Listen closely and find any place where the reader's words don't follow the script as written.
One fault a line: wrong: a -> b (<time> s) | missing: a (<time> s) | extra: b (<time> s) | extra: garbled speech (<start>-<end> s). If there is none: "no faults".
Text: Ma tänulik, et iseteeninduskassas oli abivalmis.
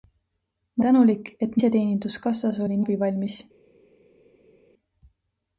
no faults